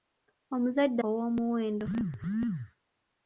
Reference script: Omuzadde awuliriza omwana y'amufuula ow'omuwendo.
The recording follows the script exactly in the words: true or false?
false